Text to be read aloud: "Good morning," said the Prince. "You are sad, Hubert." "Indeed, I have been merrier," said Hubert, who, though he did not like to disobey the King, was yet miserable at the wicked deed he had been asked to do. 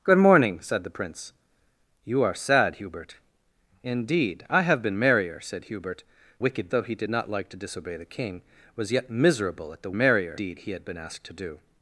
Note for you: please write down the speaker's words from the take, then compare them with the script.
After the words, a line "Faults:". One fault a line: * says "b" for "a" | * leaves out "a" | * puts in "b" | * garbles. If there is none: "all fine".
"Good morning," said the Prince. "You are sad, Hubert." "Indeed, I have been merrier," said Hubert, wicked, though he did not like to disobey the King, was yet miserable at the merrier deed he had been asked to do.
Faults:
* says "wicked" for "who"
* says "merrier" for "wicked"